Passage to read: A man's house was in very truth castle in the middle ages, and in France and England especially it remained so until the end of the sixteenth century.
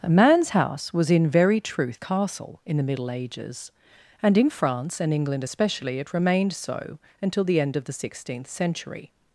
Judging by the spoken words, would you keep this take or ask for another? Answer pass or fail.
pass